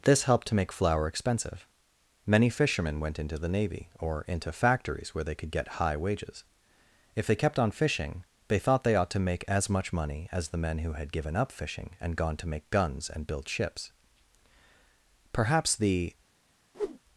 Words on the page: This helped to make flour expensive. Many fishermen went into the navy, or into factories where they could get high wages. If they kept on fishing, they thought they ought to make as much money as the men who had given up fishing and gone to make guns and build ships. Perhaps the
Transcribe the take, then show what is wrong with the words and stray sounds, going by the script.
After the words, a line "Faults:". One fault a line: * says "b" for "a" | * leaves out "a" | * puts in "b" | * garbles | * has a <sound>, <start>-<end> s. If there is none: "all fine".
This helped to make flour expensive. Many fishermen went into the navy, or into factories where they could get high wages. If they kept on fishing, they thought they ought to make as much money as the men who had given up fishing and gone to make guns and build ships. Perhaps the
Faults:
* has a whoosh, 16.7-17.0 s